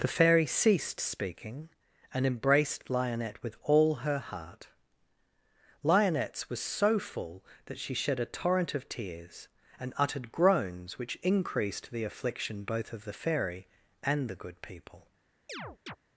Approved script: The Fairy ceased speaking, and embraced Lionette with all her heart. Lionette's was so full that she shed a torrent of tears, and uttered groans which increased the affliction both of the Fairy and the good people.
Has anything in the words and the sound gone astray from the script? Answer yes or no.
yes